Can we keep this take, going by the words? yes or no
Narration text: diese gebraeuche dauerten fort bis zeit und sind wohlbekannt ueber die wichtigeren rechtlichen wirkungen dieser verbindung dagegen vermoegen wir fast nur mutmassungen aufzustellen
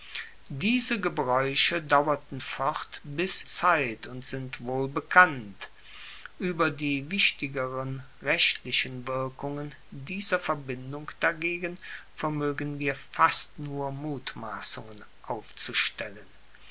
yes